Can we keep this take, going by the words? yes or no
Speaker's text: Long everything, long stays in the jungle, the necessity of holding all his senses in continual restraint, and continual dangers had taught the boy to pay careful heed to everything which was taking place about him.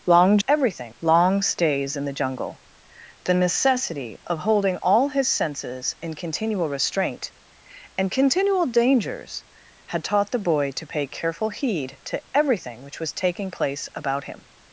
yes